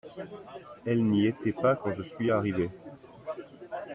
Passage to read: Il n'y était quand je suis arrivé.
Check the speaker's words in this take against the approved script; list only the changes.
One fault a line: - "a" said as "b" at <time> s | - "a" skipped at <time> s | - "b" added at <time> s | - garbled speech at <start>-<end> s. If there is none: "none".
- "Il" said as "Elle" at 0.8 s
- "pas" added at 1.5 s